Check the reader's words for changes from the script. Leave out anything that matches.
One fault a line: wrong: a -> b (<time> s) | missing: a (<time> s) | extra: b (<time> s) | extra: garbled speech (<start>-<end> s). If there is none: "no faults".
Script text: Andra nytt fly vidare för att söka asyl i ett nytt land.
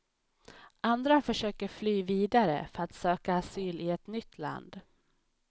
wrong: nytt -> försöker (1.2 s)